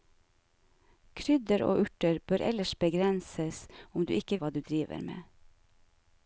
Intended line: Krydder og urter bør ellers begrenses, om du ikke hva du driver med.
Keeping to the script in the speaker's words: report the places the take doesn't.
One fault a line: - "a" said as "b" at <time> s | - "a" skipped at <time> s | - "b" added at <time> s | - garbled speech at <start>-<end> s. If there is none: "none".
none